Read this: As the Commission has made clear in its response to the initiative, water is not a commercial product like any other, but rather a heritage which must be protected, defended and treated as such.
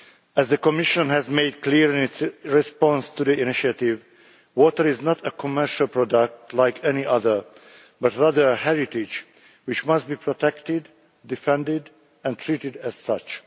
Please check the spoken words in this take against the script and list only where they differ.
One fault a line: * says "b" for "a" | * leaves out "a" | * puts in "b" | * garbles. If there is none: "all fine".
all fine